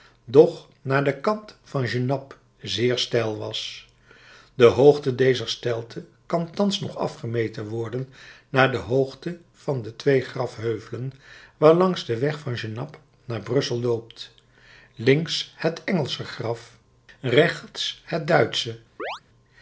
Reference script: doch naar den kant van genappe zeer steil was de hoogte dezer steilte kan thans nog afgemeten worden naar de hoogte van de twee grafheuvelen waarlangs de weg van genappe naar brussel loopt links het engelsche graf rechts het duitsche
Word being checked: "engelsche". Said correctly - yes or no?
yes